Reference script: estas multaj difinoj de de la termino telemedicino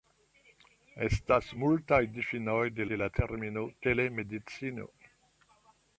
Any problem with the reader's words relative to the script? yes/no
no